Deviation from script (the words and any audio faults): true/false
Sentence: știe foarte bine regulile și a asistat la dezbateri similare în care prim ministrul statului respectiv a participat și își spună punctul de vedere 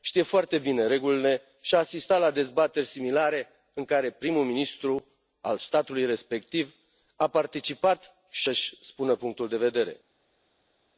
false